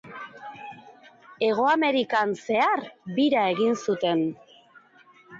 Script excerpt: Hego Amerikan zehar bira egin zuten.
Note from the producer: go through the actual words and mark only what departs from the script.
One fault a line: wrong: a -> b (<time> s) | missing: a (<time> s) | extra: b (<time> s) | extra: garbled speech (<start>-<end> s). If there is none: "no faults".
no faults